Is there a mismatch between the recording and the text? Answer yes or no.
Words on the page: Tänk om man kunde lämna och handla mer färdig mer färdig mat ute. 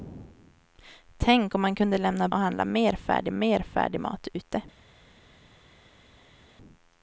no